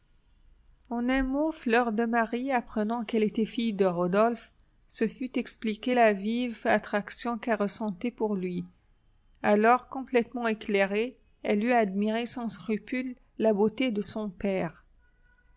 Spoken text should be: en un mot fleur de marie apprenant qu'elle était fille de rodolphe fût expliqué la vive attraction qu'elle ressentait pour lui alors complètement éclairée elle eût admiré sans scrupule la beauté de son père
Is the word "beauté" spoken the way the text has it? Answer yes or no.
yes